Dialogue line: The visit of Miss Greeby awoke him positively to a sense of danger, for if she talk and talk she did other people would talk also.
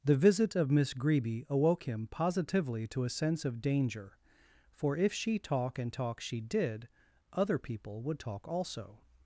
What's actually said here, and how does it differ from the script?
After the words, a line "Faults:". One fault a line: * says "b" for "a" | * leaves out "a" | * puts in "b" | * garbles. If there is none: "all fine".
The visit of Miss Greeby awoke him positively to a sense of danger, for if she talk and talk she did other people would talk also.
Faults:
all fine